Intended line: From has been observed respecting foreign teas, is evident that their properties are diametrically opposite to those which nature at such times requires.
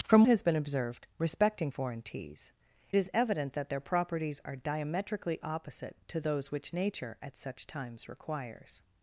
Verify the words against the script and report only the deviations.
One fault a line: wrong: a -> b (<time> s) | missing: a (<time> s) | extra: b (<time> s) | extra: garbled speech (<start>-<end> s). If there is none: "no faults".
no faults